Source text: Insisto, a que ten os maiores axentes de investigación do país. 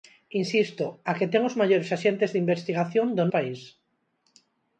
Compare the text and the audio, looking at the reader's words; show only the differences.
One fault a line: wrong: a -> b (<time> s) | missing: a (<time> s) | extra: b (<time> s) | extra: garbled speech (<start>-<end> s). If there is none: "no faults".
no faults